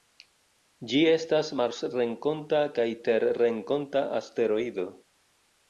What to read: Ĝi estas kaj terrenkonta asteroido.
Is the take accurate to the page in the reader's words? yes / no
no